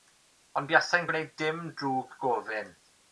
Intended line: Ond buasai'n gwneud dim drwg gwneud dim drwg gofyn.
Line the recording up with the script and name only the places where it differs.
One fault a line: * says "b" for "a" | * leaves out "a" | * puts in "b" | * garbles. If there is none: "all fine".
* leaves out "gwneud dim drwg"